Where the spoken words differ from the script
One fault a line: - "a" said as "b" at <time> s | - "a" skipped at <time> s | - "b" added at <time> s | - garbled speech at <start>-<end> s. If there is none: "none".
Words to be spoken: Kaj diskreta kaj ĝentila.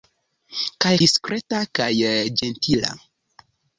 none